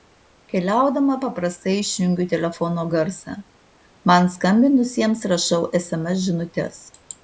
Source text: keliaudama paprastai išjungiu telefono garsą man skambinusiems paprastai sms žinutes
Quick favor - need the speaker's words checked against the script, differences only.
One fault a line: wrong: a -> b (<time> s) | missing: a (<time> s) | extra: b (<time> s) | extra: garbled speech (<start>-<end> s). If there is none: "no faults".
wrong: paprastai -> rašau (5.4 s)